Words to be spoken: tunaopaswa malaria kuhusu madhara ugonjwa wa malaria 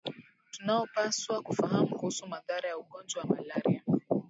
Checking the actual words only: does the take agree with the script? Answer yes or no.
no